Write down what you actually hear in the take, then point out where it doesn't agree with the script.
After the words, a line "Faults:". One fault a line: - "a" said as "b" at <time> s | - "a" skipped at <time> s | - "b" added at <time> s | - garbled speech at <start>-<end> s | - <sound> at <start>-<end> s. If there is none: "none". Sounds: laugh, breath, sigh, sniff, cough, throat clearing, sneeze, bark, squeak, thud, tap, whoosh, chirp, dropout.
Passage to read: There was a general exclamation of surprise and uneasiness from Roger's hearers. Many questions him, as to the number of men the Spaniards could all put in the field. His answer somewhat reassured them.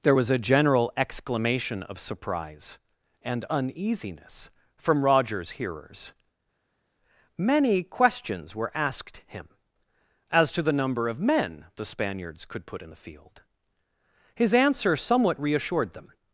There was a general exclamation of surprise and uneasiness from Roger's hearers. Many questions were asked him, as to the number of men the Spaniards could put in the field. His answer somewhat reassured them.
Faults:
- "were asked" added at 8.5 s
- "all" skipped at 12.6 s